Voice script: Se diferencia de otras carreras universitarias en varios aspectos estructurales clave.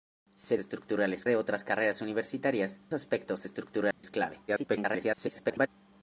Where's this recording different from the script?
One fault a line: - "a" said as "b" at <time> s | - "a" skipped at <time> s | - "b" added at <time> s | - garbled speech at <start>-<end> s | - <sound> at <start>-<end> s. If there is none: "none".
- "diferencia" said as "estructurales" at 0.6 s
- "en varios" skipped at 2.8 s
- dropout at 3.9-4.0 s
- garbled speech at 4.5-5.7 s